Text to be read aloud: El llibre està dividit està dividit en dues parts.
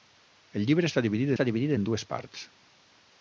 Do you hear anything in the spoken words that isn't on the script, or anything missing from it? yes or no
no